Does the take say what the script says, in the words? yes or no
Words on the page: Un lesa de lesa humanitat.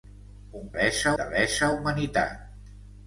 yes